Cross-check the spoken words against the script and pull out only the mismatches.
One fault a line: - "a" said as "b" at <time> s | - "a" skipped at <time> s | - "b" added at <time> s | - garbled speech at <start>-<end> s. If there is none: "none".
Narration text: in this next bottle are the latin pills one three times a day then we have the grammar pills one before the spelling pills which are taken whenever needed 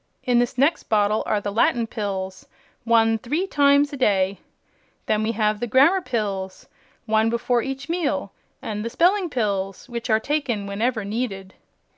- "each meal and" added at 7.6 s